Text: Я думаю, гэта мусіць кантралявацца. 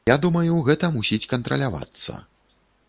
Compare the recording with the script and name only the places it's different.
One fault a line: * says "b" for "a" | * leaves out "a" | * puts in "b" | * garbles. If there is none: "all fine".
all fine